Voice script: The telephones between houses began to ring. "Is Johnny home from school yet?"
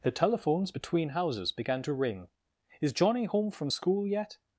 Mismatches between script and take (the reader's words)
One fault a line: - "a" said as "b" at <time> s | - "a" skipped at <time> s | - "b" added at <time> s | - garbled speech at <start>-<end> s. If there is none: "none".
none